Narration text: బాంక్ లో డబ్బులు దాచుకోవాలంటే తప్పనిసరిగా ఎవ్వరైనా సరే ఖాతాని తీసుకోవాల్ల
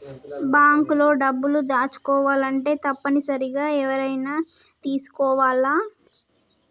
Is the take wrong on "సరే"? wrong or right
wrong